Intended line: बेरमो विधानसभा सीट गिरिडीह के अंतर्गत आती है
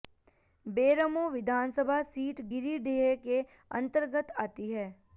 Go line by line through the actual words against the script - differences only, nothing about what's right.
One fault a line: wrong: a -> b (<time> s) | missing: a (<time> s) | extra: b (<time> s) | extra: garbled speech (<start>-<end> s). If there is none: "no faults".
no faults